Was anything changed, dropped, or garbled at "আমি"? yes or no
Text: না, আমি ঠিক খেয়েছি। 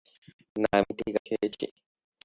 no